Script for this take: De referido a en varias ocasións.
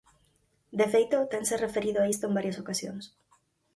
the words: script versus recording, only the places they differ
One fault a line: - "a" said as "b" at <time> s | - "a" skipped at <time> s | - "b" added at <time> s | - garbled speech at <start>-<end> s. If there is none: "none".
- "feito tense" added at 0.9 s
- "isto" added at 2.1 s